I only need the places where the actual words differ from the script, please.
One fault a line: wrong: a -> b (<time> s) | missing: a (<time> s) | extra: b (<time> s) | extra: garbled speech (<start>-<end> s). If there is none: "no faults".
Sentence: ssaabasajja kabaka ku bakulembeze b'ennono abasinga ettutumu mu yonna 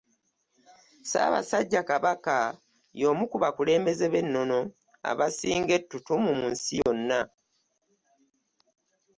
extra: y'omu (3.0 s)
extra: nsi (6.5 s)